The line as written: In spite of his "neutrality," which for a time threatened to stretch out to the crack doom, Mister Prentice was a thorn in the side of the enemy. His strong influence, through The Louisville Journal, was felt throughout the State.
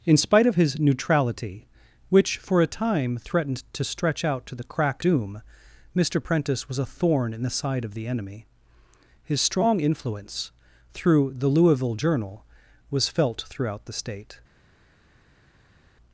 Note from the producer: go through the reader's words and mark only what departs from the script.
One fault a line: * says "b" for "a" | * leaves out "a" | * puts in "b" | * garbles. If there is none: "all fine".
all fine